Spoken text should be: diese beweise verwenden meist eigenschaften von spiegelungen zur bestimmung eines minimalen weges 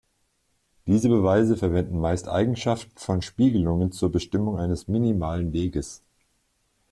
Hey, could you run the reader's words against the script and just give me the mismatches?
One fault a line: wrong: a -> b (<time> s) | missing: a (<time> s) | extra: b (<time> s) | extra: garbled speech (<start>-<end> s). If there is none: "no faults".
no faults